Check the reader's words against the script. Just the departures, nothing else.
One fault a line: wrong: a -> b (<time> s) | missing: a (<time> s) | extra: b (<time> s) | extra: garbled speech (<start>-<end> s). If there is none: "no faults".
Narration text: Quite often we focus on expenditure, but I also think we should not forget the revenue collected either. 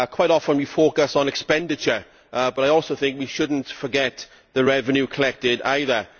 no faults